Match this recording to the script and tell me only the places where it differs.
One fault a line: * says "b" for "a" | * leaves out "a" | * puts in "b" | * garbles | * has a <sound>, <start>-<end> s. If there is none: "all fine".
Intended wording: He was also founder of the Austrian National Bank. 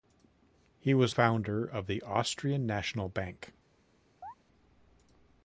* leaves out "also"
* has a chirp, 4.2-4.3 s